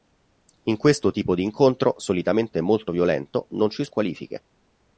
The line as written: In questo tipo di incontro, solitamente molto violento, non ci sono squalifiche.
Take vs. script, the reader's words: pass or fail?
fail